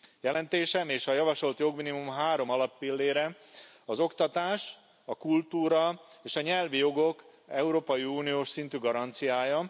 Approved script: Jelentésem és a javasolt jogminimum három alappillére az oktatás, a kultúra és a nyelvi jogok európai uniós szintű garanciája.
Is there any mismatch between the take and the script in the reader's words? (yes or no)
no